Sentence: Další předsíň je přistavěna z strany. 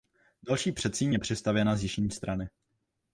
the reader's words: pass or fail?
fail